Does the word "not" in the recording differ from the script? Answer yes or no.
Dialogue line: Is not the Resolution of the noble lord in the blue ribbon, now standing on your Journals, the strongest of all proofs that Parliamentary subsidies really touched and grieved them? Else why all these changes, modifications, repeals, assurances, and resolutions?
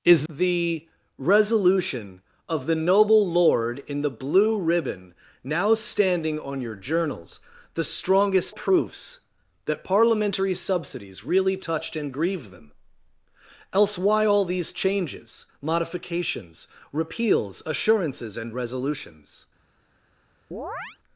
yes